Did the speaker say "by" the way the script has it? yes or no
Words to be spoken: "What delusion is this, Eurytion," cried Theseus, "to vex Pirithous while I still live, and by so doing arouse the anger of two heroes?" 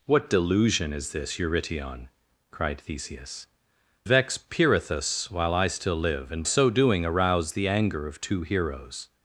no